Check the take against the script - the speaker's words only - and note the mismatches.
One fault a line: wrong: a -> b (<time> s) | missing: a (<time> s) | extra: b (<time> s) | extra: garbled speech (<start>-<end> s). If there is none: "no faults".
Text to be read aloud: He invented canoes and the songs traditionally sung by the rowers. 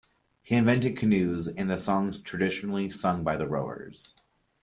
no faults